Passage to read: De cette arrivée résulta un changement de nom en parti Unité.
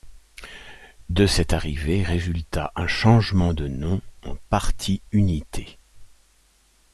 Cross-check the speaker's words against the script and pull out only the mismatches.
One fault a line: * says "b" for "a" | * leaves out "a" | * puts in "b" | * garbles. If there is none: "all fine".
all fine